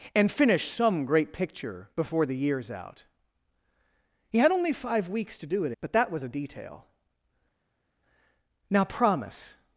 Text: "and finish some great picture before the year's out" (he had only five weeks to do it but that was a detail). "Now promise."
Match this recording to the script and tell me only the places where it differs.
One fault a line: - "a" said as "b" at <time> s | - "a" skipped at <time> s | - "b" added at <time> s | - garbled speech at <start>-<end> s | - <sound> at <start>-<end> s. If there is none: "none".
none